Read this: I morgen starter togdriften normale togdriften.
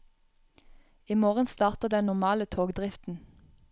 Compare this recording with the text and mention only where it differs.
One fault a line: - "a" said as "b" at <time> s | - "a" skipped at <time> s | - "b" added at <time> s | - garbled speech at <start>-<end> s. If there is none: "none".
- "togdriften" said as "den" at 1.9 s